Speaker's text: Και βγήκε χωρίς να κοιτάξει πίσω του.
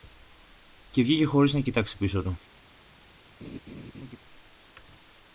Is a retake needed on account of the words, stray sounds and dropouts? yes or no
yes